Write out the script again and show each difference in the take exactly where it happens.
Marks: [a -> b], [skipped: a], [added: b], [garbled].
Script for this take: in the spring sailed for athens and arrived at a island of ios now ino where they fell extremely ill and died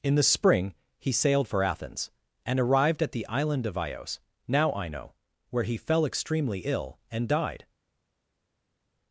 in the spring [added: he] sailed for athens and arrived at [a -> the] island of ios now ino where [they -> he] fell extremely ill and died